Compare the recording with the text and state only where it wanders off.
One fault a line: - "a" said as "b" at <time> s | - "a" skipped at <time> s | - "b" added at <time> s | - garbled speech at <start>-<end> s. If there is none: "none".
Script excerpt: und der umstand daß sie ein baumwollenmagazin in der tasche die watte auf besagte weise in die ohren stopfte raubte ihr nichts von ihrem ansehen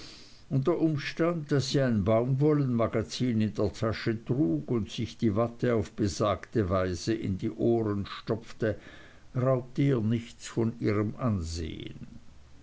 - "trug und sich" added at 4.2 s